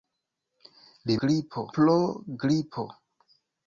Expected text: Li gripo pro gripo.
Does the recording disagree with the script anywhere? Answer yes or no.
no